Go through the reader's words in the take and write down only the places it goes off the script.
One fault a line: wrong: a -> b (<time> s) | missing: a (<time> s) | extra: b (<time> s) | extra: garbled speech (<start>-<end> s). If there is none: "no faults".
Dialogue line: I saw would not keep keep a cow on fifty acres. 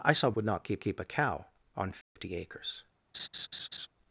no faults